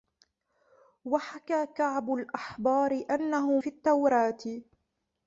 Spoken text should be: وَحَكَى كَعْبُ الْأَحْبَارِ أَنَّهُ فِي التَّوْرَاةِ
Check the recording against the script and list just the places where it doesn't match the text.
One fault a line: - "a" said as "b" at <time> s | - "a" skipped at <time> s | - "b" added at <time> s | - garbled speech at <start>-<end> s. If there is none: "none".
none